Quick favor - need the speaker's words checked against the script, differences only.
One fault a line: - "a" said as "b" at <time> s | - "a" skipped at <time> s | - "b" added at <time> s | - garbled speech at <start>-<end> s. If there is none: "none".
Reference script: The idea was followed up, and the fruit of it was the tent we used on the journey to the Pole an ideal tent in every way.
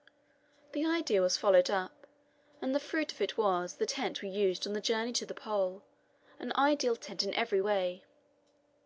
none